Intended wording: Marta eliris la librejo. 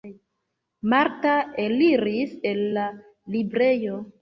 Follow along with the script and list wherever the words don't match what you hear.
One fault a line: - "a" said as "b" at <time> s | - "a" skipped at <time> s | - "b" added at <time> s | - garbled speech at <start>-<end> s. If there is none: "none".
- "el" added at 2.4 s